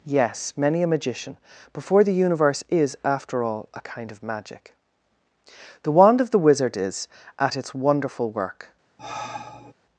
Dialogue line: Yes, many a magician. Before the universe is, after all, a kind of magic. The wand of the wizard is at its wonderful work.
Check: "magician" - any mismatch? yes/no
no